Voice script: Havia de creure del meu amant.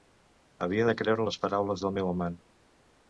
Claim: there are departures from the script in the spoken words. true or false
true